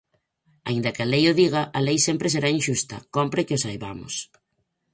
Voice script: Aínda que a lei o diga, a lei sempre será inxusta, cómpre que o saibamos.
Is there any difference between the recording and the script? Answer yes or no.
no